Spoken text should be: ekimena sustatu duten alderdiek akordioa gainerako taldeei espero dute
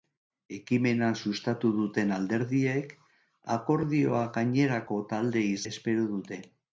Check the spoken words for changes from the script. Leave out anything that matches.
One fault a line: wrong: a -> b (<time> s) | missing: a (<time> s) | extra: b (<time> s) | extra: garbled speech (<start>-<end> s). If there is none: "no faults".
no faults